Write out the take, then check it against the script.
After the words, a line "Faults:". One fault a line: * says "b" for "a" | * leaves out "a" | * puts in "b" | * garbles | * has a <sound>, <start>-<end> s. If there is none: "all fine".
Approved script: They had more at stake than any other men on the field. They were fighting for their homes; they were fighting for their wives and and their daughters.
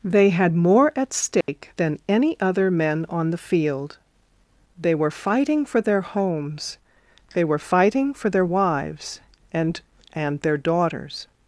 They had more at stake than any other men on the field. They were fighting for their homes; they were fighting for their wives and and their daughters.
Faults:
* has a dropout, 1.4-1.5 s